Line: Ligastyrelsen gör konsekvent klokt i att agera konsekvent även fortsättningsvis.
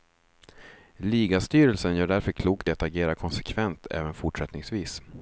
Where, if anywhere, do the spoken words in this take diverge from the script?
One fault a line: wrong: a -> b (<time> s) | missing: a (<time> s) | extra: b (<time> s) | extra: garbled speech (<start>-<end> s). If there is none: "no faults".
wrong: konsekvent -> därför (2.1 s)